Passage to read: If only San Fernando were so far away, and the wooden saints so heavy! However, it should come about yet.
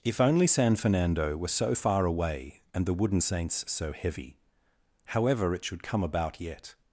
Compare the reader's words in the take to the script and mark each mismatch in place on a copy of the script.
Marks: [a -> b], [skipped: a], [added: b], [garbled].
If only San Fernando were so far away, and the wooden saints so heavy! However, it should come about yet.